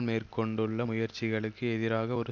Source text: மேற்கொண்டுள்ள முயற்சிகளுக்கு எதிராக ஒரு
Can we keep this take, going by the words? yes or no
yes